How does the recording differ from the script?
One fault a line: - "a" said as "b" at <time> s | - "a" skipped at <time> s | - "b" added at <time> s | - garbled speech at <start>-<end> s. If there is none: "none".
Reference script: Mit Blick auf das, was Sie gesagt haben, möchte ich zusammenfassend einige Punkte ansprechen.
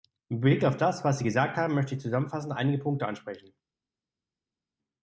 none